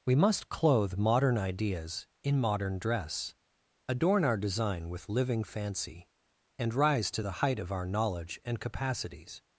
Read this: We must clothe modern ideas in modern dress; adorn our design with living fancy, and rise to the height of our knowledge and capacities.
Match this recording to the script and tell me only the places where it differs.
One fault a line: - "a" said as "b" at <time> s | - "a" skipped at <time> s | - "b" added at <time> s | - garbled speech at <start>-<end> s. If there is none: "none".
none